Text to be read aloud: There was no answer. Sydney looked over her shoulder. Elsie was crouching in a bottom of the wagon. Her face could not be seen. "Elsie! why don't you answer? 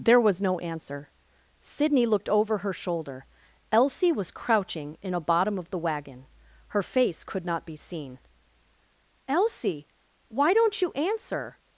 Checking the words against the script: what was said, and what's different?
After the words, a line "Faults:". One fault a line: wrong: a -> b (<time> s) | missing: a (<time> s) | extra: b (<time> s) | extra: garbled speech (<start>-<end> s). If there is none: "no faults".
There was no answer. Sydney looked over her shoulder. Elsie was crouching in a bottom of the wagon. Her face could not be seen. "Elsie! why don't you answer?
Faults:
no faults